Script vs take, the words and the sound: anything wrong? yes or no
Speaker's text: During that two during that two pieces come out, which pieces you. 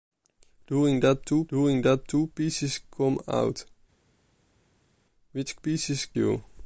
no